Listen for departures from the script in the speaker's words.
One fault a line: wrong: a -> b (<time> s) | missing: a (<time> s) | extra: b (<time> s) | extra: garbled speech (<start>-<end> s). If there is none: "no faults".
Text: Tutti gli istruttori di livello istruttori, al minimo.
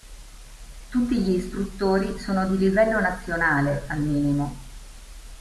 extra: sono (2.2 s)
wrong: istruttori -> nazionale (3.0 s)